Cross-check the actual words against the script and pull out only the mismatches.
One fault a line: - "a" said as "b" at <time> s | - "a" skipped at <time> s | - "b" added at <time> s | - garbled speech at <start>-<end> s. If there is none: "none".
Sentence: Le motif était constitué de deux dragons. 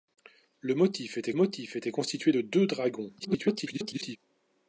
- "motif était" added at 1.3 s
- garbled speech at 3.2-4.2 s